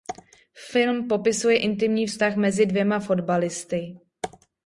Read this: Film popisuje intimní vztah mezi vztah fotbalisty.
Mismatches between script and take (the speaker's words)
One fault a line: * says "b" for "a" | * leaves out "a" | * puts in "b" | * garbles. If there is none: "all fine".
* says "dvěma" for "vztah"